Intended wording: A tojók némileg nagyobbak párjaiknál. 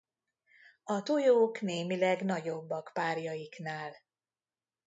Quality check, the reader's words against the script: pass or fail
pass